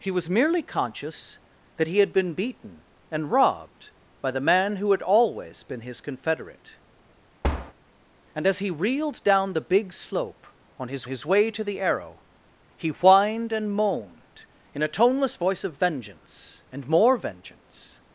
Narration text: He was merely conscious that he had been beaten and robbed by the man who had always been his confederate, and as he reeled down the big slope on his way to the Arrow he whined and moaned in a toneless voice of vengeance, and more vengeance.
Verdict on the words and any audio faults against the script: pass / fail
fail